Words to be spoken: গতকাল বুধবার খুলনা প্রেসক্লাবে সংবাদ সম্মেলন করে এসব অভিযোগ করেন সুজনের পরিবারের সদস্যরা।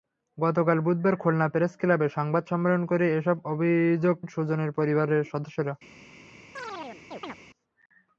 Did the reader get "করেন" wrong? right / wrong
wrong